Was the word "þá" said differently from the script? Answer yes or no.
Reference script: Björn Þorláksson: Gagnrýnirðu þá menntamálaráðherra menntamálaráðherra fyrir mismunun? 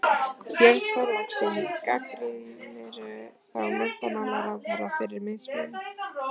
no